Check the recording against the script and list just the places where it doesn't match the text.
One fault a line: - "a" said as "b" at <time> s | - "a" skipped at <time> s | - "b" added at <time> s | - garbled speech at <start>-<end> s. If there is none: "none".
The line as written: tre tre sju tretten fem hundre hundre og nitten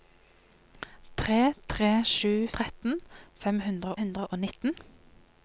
none